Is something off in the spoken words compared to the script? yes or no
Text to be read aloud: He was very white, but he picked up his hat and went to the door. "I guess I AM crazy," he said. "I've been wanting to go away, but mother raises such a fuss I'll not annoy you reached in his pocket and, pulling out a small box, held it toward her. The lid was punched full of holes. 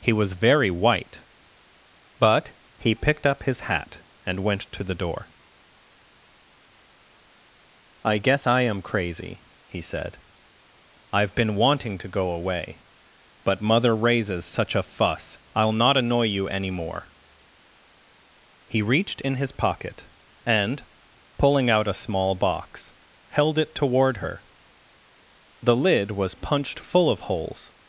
yes